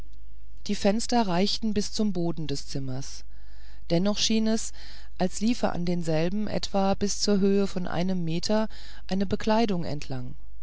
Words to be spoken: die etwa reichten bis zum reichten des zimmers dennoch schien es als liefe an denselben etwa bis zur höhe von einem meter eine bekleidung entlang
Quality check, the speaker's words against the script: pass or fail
fail